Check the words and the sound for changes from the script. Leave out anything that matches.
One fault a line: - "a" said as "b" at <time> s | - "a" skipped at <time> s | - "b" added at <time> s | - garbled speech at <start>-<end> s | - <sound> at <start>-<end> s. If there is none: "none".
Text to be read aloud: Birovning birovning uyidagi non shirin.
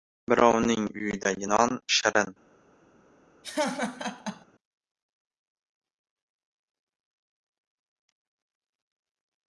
- "birovning" skipped at 0.9 s
- laugh at 3.4-4.5 s